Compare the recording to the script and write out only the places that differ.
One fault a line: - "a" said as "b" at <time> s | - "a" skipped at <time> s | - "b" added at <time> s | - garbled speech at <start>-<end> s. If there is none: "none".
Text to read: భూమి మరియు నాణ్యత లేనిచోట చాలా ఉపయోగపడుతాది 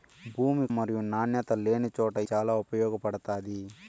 none